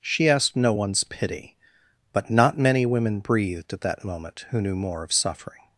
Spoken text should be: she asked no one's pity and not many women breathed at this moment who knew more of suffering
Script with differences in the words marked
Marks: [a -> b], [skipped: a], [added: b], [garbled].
she asked no one's pity [and -> but] not many women breathed at [this -> that] moment who knew more of suffering